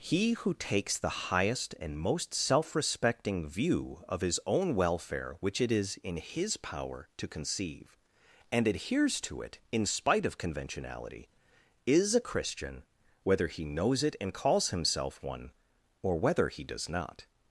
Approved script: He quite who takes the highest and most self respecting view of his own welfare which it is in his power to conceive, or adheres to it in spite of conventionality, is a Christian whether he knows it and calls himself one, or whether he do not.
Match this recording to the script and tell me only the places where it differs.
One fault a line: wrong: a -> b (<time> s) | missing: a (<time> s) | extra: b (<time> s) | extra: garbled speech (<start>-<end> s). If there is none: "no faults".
missing: quite (0.3 s)
wrong: or -> and (8.5 s)
wrong: do -> does (16.6 s)